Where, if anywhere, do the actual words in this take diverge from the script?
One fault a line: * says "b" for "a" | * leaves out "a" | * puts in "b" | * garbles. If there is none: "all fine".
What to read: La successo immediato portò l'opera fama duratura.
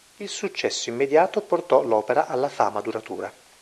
* says "Il" for "La"
* puts in "alla"